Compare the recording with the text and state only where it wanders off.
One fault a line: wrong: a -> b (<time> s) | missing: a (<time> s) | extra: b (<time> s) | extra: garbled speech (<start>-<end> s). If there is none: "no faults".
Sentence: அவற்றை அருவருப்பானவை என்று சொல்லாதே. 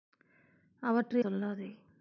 missing: அருவருப்பானவை என்று (1.2 s)